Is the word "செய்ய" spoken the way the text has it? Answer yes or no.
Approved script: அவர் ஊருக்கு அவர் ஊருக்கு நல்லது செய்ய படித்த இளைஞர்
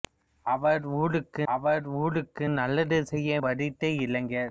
yes